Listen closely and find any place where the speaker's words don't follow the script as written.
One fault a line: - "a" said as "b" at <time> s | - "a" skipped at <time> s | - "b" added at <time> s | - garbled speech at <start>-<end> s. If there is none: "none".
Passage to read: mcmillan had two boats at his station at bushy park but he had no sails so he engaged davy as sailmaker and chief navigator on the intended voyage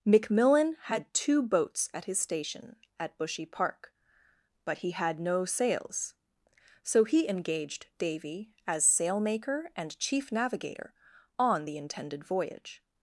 none